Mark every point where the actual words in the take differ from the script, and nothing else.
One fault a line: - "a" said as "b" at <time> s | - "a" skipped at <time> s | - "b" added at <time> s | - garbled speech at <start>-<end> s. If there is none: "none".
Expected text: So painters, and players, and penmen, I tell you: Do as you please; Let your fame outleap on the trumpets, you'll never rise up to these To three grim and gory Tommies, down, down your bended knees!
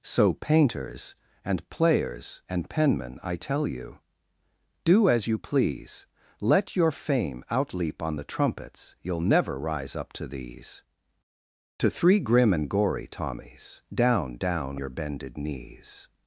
none